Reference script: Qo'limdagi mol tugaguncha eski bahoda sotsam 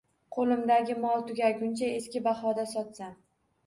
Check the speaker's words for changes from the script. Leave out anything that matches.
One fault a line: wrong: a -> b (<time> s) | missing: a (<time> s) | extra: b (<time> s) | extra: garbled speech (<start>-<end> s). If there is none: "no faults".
no faults